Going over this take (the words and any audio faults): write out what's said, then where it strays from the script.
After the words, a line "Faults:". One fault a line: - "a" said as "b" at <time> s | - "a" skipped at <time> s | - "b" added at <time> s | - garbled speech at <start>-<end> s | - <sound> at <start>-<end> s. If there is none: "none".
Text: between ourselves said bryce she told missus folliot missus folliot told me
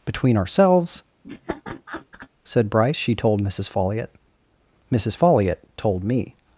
between ourselves said bryce she told missus folliot missus folliot told me
Faults:
- laugh at 1.2-2.3 s